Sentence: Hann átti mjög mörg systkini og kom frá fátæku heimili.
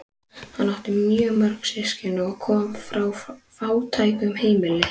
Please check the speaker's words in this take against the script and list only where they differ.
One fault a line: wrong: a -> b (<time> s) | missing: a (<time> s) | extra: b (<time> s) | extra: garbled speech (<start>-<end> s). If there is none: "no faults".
no faults